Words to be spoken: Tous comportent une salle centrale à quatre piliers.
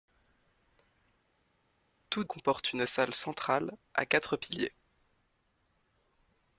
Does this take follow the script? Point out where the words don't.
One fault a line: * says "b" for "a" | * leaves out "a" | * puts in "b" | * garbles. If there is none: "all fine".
all fine